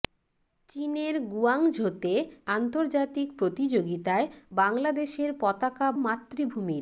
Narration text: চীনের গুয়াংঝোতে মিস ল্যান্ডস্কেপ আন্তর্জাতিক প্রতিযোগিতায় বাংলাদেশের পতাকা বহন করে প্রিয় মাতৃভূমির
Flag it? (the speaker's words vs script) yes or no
yes